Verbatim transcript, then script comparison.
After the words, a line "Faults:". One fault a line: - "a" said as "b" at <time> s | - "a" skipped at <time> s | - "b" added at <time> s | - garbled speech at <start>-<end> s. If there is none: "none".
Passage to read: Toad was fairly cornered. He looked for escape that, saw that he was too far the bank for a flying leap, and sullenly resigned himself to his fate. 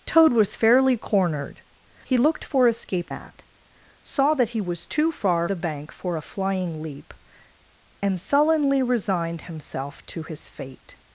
Toad was fairly cornered. He looked for escape that, saw that he was too far the bank for a flying leap, and sullenly resigned himself to his fate.
Faults:
none